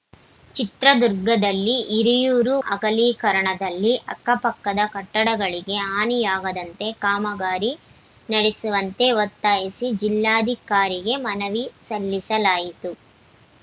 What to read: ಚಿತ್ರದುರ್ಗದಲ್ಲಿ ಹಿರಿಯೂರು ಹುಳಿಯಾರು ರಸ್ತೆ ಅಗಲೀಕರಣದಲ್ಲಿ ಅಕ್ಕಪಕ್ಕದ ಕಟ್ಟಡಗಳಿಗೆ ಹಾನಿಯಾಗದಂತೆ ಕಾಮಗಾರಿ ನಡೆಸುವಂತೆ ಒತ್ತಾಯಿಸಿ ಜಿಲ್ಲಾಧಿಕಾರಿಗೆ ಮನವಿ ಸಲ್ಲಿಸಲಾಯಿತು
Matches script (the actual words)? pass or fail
fail